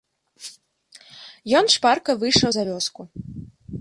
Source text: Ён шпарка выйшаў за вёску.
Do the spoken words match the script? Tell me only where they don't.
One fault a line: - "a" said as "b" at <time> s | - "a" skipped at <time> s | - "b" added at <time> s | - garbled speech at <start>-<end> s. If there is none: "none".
none